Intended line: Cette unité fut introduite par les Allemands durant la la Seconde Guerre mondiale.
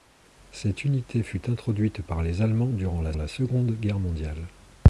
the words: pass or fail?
pass